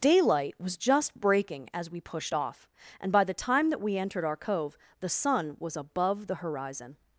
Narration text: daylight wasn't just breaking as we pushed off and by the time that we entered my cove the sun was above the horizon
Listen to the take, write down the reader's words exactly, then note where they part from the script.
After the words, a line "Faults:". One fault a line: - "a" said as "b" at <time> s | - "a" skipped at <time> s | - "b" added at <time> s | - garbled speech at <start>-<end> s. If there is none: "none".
daylight was just breaking as we pushed off and by the time that we entered our cove the sun was above the horizon
Faults:
- "wasn't" said as "was" at 0.6 s
- "my" said as "our" at 4.2 s